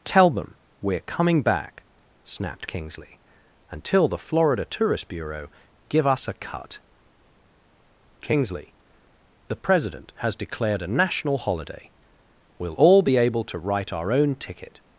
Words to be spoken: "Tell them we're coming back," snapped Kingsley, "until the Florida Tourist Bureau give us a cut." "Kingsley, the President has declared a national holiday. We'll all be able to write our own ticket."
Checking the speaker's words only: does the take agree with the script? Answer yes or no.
yes